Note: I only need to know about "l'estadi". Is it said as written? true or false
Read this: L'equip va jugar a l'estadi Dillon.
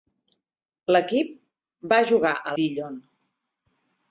false